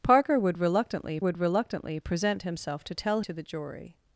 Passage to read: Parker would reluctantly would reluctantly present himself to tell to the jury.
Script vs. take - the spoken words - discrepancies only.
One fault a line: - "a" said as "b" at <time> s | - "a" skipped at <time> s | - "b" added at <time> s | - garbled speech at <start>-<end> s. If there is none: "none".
none